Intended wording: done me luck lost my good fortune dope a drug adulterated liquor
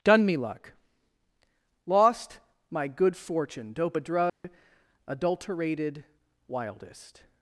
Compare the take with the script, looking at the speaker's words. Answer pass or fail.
fail